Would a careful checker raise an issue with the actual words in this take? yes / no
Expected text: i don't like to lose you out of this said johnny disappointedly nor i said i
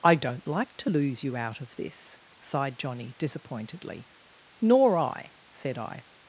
yes